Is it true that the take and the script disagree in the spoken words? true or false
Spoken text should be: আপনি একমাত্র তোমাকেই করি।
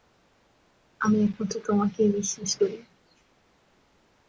true